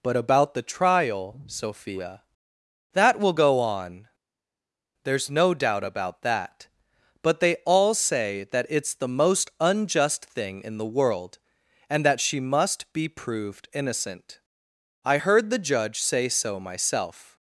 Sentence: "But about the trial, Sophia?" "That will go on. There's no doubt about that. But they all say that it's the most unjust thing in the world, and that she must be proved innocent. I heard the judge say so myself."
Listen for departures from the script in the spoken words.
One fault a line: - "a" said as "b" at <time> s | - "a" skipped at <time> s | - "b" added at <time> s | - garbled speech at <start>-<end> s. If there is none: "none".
none